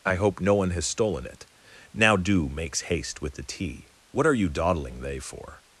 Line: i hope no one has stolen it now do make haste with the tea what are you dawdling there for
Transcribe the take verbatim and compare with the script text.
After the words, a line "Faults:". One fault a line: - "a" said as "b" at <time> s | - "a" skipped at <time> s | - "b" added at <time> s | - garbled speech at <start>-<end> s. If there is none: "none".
i hope no one has stolen it now do makes haste with the tea what are you dawdling they for
Faults:
- "make" said as "makes" at 2.5 s
- "there" said as "they" at 5.0 s